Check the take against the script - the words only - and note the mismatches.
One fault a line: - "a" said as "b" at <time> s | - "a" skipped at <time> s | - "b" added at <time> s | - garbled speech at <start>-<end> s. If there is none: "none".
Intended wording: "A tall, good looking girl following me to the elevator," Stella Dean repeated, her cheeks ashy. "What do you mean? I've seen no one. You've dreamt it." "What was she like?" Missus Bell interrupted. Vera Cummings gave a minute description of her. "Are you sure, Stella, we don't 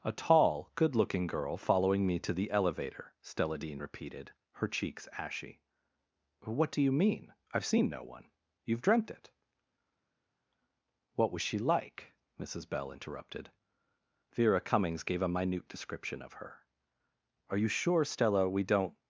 none